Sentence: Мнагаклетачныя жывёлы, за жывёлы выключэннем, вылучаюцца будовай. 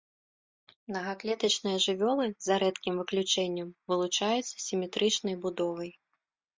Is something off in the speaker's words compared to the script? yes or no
yes